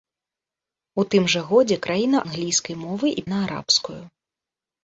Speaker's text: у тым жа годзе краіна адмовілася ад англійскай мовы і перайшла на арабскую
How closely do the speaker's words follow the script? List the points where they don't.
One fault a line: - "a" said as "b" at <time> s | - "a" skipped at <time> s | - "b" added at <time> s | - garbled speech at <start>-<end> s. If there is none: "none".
- "адмовілася ад" skipped at 2.2 s
- "перайшла" skipped at 3.3 s